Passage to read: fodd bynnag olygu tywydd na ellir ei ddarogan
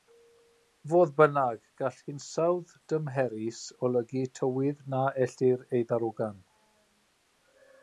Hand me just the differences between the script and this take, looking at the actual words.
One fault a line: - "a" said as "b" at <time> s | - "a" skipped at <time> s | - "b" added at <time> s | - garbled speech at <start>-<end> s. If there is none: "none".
- "gall hinsawdd dymherus" added at 1.8 s